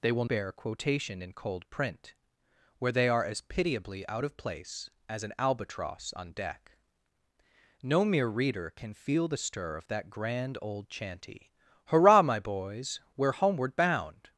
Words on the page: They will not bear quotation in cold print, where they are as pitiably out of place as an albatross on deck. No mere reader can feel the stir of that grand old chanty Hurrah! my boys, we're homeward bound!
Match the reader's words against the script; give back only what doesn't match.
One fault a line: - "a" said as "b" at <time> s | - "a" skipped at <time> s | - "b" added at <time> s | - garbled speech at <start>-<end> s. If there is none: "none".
- "not" skipped at 0.2 s